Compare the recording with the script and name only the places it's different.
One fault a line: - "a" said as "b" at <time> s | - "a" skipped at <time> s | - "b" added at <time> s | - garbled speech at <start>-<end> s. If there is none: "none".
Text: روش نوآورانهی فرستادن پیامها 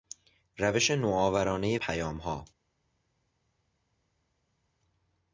- "فرستادن" skipped at 1.8 s